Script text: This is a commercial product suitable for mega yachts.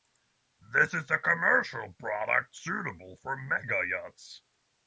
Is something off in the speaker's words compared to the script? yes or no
no